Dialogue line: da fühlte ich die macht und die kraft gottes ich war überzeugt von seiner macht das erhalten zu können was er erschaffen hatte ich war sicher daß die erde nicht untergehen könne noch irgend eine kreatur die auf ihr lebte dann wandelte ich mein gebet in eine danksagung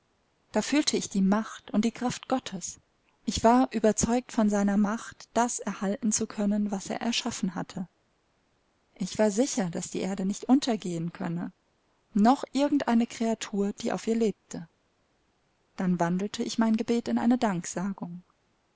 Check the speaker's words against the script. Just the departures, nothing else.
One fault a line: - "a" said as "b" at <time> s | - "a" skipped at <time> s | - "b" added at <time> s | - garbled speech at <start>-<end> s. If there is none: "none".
none